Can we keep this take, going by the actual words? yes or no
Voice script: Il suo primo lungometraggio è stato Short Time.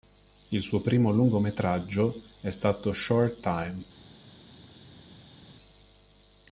yes